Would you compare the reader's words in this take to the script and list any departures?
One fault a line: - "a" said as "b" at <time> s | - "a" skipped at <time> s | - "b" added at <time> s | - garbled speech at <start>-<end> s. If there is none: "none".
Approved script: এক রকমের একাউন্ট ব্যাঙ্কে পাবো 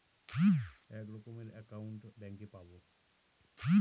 none